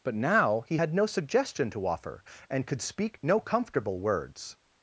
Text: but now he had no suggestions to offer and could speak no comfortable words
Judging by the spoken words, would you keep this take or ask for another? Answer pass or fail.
fail